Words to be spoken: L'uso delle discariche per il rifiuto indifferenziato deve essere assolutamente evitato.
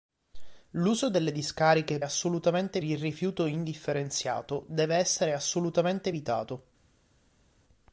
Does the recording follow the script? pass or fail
fail